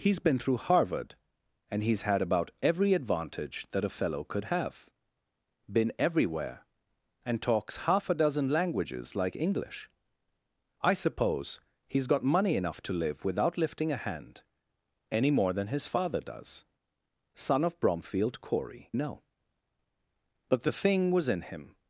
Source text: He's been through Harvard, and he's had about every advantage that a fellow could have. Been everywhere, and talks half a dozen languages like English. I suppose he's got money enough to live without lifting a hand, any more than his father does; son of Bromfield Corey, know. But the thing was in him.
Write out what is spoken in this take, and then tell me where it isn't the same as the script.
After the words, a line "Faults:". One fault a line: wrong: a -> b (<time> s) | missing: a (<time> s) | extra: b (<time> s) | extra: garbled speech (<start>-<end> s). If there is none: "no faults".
He's been through Harvard, and he's had about every advantage that a fellow could have. Been everywhere, and talks half a dozen languages like English. I suppose he's got money enough to live without lifting a hand, any more than his father does; son of Bromfield Corey, know. But the thing was in him.
Faults:
no faults